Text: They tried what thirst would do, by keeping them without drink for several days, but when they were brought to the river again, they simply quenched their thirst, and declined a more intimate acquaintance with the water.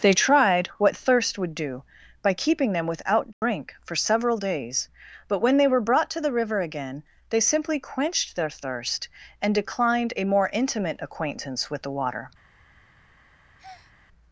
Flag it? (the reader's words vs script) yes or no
no